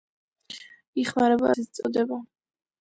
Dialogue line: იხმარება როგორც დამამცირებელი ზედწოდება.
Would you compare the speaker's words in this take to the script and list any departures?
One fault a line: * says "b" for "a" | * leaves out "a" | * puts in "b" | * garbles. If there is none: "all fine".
* leaves out "როგორც დამამცირებელი"